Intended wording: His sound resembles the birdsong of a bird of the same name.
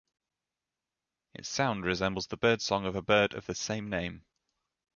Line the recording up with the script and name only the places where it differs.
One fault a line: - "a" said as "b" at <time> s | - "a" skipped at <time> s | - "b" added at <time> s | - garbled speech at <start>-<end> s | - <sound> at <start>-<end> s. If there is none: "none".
- "His" said as "Its" at 1.3 s